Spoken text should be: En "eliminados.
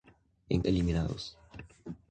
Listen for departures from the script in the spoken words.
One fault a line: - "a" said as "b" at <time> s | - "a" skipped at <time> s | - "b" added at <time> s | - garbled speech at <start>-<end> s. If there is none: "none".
none